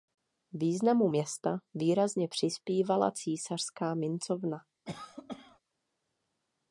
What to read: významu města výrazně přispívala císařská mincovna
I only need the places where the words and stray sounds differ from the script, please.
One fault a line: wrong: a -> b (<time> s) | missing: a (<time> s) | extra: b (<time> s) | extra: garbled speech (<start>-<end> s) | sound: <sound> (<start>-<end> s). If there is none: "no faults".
sound: cough (4.8-5.6 s)